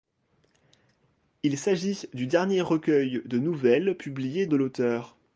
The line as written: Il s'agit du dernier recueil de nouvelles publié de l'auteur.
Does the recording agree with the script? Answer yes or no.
yes